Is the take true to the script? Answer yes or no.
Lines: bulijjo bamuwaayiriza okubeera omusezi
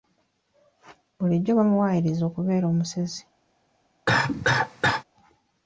yes